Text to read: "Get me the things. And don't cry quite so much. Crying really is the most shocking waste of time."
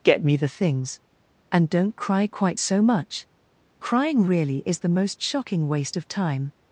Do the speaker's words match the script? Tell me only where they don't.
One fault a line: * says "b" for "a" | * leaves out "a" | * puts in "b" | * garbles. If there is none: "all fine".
all fine